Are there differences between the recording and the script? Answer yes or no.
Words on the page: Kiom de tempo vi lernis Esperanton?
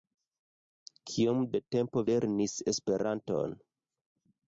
yes